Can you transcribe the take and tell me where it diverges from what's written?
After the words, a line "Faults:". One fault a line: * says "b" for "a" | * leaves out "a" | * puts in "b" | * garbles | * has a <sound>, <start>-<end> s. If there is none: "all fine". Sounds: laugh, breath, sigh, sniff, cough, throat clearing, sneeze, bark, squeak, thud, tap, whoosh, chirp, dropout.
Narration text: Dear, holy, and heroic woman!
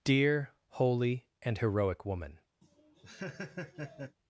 Dear, holy, and heroic woman!
Faults:
* has a laugh, 2.6-4.2 s